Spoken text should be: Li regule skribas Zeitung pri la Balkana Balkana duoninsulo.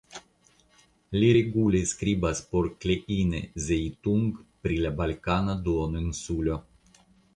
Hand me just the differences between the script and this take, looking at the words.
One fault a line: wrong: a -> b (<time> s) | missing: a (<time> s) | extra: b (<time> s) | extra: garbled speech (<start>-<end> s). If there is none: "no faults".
extra: por Kleine (2.5 s)
missing: Balkana (5.6 s)